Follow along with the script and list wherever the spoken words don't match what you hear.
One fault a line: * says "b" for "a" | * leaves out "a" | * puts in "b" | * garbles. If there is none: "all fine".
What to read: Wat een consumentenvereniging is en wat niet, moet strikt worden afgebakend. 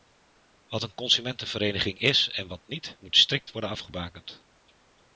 all fine